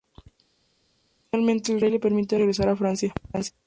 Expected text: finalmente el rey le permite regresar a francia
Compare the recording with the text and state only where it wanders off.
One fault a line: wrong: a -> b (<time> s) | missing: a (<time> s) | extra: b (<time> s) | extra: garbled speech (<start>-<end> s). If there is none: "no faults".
no faults